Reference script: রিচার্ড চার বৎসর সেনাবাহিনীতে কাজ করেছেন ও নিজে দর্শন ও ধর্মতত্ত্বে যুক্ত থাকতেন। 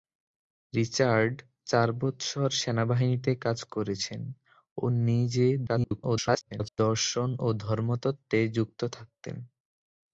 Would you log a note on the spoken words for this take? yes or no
yes